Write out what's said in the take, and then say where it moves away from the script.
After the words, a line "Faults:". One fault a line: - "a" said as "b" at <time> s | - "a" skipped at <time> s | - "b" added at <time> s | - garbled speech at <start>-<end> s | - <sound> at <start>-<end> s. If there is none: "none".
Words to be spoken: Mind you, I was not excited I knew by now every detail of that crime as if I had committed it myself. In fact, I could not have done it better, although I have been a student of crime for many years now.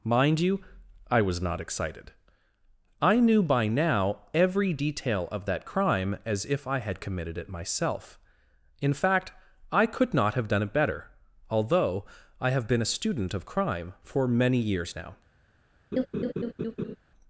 Mind you, I was not excited I knew by now every detail of that crime as if I had committed it myself. In fact, I could not have done it better, although I have been a student of crime for many years now.
Faults:
- laugh at 15.9-17.0 s